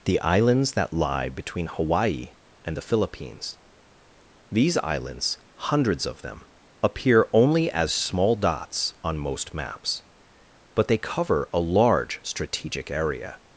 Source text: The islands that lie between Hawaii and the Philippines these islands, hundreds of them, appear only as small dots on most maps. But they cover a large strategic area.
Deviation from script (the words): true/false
false